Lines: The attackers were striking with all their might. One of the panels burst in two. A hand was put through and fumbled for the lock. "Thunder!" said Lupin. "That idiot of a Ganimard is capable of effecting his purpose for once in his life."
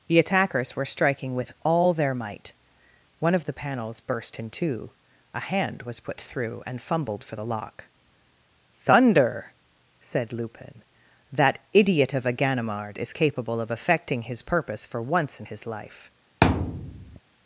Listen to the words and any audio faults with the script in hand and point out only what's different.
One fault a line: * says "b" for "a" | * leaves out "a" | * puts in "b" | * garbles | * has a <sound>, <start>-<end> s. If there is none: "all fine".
* has a thud, 16.4-17.2 s